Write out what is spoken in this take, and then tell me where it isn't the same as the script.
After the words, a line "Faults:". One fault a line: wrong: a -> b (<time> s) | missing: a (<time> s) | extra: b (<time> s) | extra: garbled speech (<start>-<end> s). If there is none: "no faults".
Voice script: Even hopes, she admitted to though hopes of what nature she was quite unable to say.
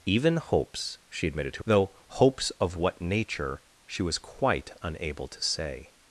Even hopes, she admitted to though hopes of what nature she was quite unable to say.
Faults:
no faults